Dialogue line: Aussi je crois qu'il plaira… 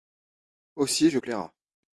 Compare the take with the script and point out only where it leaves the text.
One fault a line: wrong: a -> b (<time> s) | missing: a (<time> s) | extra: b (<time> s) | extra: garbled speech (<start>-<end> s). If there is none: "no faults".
missing: crois qu'il (1.2 s)